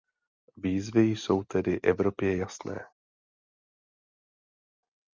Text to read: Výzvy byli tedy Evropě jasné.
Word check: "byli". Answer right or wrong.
wrong